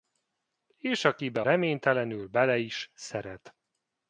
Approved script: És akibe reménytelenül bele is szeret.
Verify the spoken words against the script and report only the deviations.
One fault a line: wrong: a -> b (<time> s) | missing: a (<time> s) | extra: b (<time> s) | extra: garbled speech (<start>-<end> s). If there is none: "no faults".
no faults